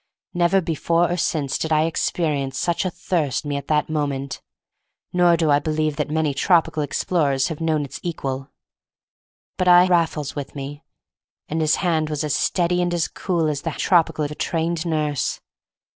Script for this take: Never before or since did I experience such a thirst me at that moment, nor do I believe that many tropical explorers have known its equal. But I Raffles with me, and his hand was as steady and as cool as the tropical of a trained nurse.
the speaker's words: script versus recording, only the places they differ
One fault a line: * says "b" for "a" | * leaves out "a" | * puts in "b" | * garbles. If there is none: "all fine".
all fine